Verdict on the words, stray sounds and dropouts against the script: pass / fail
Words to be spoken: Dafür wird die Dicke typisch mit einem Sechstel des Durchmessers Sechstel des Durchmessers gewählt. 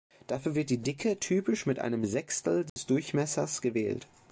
fail